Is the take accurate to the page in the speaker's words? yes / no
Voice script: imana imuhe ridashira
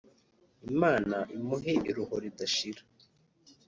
no